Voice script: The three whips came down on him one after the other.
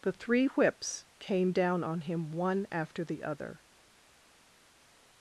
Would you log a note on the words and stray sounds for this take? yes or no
no